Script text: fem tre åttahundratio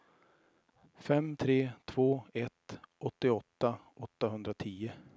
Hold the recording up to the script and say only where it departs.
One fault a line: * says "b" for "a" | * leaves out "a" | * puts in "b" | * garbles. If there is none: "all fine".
* puts in "två ett åttioåtta"